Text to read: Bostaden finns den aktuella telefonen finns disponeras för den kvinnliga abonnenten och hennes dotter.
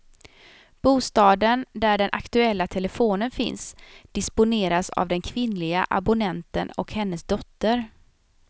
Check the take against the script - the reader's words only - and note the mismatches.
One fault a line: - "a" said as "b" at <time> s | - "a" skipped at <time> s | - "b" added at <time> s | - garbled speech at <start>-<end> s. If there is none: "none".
- "finns" said as "där" at 1.7 s
- "för" said as "av" at 4.9 s